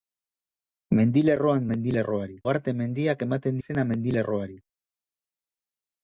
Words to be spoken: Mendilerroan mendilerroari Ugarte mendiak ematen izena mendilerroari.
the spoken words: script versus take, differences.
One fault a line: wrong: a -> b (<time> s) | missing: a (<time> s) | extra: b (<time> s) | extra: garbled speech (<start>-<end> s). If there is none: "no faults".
no faults